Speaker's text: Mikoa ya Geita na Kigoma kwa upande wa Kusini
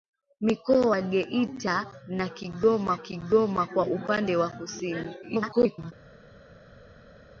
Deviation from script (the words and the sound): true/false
true